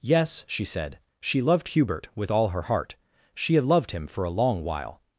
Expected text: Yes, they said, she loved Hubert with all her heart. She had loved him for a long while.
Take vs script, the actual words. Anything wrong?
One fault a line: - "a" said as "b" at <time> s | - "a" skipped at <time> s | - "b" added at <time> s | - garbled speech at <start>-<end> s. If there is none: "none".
- "they" said as "she" at 0.5 s